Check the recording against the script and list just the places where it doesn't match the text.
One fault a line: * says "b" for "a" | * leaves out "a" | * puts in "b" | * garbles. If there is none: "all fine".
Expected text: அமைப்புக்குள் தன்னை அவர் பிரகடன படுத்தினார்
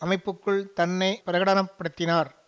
* leaves out "அவர்"